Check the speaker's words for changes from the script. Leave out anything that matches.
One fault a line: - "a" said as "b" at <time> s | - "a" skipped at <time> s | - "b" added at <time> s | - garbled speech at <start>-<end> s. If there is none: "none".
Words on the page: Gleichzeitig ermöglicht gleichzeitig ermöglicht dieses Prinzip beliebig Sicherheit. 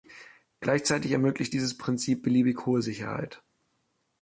- "gleichzeitig ermöglicht" skipped at 1.6 s
- "hohe" added at 2.7 s